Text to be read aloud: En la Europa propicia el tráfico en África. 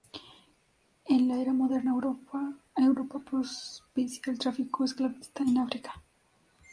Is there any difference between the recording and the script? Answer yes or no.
yes